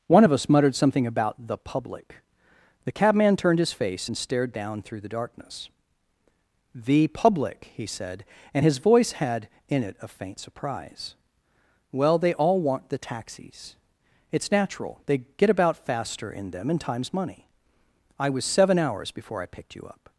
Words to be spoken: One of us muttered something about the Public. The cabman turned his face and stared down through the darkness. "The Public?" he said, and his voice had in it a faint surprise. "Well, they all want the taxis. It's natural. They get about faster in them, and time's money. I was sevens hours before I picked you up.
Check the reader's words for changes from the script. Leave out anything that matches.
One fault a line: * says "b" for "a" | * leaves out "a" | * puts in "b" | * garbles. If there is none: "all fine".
* says "seven" for "sevens"